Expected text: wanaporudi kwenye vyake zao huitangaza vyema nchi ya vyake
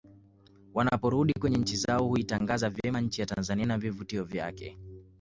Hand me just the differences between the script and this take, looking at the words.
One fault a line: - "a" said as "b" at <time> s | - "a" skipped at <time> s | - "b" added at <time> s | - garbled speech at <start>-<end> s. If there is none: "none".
- "vyake" said as "nchi" at 1.6 s
- "tanzania na vivutio" added at 3.3 s